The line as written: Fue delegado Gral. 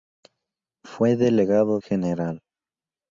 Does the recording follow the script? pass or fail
pass